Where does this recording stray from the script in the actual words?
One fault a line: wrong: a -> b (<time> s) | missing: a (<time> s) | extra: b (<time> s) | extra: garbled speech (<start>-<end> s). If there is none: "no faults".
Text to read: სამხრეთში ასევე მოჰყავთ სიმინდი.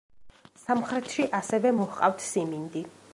no faults